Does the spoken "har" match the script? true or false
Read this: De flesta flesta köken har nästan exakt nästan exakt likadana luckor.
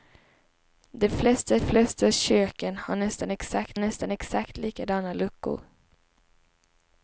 true